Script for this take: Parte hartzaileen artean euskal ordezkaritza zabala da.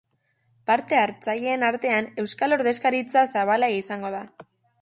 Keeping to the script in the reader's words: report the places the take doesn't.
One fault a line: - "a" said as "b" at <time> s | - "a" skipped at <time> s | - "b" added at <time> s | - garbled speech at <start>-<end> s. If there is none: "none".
- "izango" added at 3.8 s